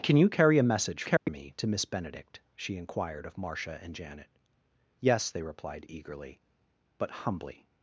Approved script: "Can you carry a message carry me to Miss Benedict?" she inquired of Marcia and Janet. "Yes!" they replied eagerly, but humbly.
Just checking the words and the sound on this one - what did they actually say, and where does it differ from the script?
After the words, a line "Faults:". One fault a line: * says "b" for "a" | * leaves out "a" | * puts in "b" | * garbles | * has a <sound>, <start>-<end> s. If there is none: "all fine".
"Can you carry a message carry me to Miss Benedict?" she inquired of Marcia and Janet. "Yes!" they replied eagerly, but humbly.
Faults:
* has a dropout, 1.2-1.3 s